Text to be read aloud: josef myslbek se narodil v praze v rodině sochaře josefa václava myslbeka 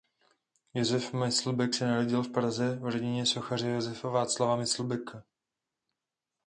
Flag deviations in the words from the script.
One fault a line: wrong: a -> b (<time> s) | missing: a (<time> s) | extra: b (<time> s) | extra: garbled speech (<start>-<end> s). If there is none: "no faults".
no faults